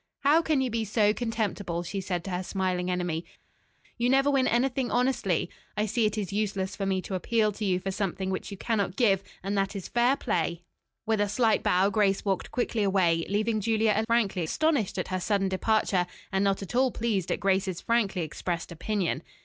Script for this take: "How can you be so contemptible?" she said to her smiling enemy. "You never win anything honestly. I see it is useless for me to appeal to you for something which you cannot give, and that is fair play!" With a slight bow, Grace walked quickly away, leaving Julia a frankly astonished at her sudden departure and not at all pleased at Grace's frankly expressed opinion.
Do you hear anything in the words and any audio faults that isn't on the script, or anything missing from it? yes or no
no